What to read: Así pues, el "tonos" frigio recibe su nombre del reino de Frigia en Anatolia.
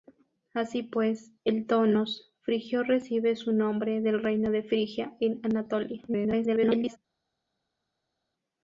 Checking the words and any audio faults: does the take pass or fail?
fail